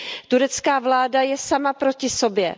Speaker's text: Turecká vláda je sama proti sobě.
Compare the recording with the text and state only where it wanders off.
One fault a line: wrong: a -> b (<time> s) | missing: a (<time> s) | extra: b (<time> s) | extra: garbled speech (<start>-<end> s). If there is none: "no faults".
no faults